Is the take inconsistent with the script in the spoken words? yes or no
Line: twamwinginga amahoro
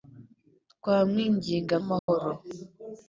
no